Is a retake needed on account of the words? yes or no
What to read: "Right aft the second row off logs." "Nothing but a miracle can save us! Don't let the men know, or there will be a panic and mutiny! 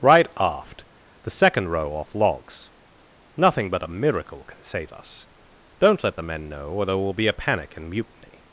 no